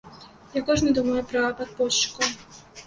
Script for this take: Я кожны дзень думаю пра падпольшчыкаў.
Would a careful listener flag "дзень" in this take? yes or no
yes